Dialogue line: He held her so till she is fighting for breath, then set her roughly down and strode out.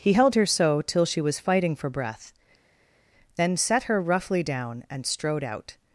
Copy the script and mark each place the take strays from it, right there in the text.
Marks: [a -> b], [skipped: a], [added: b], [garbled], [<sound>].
He held her so till she [is -> was] fighting for breath, then set her roughly down and strode out.